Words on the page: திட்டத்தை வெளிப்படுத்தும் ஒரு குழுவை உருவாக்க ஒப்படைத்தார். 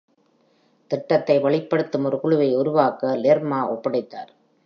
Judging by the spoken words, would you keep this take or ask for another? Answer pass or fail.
fail